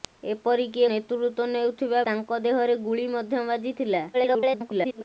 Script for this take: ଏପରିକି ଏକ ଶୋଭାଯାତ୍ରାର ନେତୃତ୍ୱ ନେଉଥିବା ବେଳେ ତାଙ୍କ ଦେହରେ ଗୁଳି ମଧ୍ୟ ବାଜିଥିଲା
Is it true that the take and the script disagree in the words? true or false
true